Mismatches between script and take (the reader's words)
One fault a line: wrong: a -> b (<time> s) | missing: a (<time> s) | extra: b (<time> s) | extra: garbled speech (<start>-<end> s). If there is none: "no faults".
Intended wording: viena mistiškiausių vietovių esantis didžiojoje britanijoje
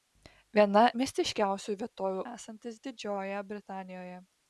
no faults